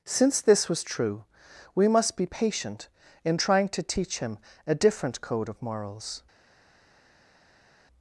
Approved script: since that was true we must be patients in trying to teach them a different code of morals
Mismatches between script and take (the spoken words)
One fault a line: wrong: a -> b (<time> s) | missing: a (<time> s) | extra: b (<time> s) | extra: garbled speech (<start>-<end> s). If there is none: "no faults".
wrong: that -> this (0.4 s)
wrong: patients -> patient (2.2 s)
wrong: them -> him (4.2 s)